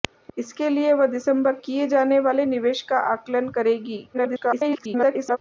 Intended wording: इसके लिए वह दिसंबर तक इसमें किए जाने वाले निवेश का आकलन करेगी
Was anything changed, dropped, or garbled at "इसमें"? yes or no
yes